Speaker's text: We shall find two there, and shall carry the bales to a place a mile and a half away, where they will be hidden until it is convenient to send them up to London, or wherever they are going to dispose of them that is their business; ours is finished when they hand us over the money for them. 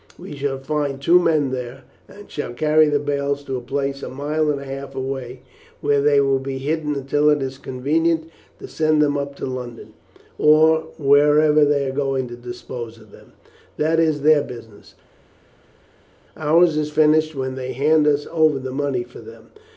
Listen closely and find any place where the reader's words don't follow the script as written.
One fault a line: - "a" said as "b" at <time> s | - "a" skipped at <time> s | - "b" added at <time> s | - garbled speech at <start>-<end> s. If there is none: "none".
- "men" added at 1.2 s